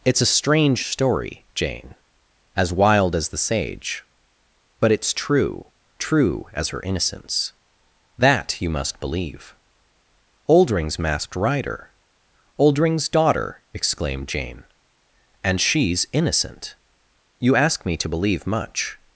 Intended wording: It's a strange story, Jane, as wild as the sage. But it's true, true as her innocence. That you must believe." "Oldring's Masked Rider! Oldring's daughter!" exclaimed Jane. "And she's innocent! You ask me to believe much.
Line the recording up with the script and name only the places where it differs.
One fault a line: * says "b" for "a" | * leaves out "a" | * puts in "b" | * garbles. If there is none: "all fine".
all fine